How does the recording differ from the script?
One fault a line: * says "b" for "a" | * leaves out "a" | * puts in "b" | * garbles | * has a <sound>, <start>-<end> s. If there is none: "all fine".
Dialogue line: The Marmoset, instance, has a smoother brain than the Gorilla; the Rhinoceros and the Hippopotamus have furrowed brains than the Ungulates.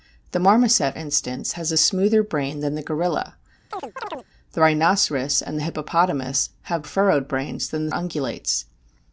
* has a chirp, 3.7-4.3 s